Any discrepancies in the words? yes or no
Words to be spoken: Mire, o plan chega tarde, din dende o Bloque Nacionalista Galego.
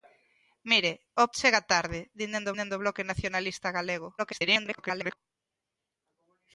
yes